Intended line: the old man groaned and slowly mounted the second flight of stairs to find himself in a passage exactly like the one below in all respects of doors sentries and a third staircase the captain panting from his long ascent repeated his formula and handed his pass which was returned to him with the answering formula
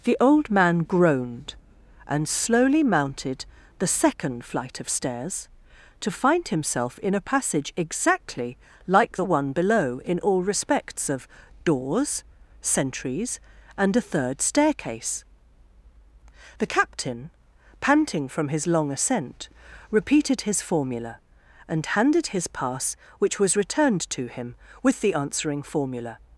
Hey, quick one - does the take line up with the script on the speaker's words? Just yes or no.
yes